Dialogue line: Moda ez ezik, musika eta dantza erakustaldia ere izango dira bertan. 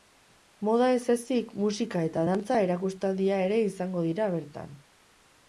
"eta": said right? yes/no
yes